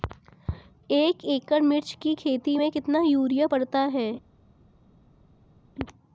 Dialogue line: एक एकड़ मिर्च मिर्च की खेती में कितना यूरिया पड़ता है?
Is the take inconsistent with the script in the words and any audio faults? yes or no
yes